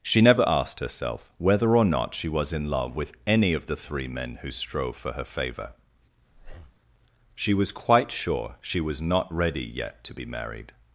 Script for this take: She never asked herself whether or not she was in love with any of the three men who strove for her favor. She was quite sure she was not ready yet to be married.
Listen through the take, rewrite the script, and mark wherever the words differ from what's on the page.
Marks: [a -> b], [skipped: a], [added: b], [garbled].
She never asked herself whether or not she was in love with any of the three men who strove for her favor. She was quite sure she was not ready yet to be married.